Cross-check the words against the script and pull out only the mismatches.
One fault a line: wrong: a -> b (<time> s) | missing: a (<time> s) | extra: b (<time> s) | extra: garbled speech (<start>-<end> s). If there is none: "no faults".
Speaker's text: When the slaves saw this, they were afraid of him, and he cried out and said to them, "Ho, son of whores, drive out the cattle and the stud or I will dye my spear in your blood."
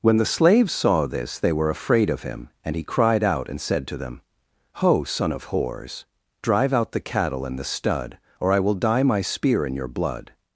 no faults